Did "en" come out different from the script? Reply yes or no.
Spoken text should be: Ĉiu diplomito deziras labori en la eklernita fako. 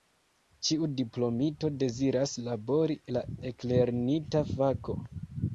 yes